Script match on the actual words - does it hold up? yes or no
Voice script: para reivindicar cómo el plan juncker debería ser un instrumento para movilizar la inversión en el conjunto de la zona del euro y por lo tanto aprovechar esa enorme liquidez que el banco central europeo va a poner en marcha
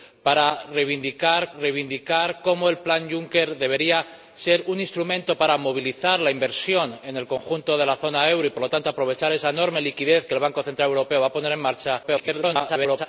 no